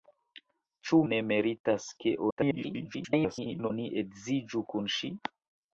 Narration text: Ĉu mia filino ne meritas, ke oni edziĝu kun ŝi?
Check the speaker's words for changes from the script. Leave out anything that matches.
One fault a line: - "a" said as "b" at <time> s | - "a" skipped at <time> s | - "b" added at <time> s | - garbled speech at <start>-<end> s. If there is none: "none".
- "mia filino" skipped at 1.0 s
- garbled speech at 2.3-3.7 s